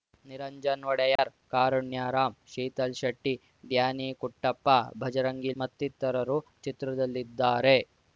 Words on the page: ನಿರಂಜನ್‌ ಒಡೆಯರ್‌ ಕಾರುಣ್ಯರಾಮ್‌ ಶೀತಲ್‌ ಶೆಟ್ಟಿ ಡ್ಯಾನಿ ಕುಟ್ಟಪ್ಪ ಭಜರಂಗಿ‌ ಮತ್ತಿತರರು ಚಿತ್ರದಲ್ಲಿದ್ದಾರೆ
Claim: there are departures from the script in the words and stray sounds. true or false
true